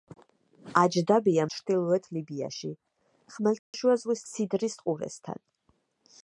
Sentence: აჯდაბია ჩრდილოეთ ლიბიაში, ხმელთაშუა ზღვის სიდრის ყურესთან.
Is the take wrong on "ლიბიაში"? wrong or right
right